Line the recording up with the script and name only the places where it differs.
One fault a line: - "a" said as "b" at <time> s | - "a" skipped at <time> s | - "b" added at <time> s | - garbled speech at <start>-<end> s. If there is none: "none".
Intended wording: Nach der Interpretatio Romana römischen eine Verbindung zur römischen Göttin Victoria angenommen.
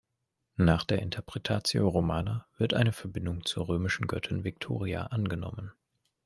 - "römischen" said as "wird" at 2.6 s